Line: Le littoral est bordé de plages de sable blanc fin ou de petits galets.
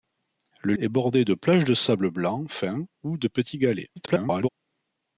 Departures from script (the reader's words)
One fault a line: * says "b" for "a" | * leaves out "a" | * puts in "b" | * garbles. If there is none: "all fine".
* leaves out "littoral"
* garbles